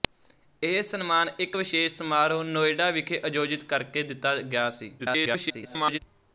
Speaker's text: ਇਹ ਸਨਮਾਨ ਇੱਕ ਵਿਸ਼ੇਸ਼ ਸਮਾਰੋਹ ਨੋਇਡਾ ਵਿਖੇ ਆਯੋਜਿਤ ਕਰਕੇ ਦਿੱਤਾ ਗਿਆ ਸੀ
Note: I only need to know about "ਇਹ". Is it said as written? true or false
true